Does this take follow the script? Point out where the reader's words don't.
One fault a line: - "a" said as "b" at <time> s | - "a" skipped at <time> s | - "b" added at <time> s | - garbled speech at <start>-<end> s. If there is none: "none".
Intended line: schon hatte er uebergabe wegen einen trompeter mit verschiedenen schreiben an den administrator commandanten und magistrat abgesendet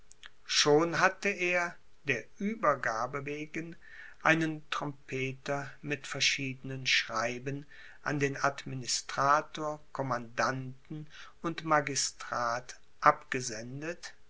- "der" added at 2.0 s